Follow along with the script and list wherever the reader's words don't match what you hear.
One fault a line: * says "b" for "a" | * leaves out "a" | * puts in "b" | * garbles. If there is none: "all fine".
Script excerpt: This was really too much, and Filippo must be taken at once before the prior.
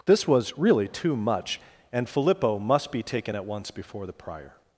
all fine